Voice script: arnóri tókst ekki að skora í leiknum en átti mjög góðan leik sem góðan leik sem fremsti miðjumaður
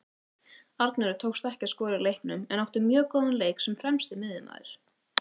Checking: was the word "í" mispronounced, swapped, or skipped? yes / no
no